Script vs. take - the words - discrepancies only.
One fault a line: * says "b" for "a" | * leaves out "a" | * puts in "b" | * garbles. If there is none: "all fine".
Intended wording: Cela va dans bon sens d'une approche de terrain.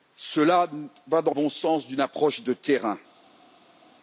all fine